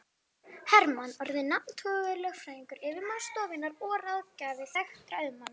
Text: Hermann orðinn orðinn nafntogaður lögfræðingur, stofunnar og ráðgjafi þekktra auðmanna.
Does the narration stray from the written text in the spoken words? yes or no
yes